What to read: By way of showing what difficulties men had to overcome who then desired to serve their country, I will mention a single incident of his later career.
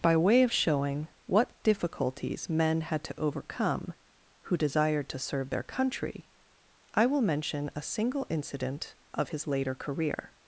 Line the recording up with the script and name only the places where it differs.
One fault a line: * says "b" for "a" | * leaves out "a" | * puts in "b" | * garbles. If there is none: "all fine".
* leaves out "then"